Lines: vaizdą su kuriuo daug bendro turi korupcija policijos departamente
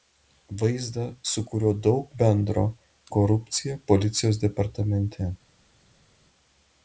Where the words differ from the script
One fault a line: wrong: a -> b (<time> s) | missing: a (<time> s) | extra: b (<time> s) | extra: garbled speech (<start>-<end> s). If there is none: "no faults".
missing: turi (2.6 s)